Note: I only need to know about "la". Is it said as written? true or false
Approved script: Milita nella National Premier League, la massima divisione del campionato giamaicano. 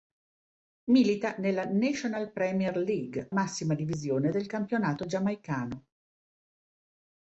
false